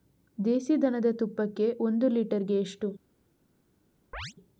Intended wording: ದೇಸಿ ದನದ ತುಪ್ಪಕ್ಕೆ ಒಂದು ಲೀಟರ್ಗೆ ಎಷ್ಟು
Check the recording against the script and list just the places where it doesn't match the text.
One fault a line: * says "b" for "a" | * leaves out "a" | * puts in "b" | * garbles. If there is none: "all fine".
all fine